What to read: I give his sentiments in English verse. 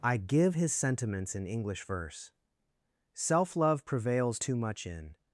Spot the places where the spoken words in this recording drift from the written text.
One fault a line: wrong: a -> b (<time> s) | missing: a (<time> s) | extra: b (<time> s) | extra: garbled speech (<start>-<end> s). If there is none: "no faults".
extra: Self love prevails too much in (3.1 s)